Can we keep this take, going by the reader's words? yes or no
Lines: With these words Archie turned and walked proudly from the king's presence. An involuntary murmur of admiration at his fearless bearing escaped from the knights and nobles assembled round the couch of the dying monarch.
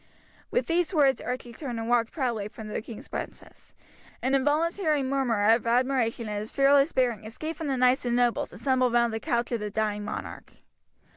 yes